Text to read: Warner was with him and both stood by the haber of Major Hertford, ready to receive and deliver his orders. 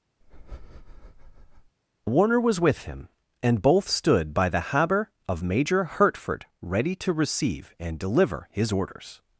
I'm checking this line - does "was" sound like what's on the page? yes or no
yes